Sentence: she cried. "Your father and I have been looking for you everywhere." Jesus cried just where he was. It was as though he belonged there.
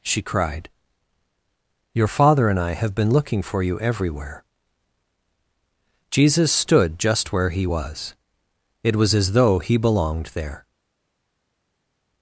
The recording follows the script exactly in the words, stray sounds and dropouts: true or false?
false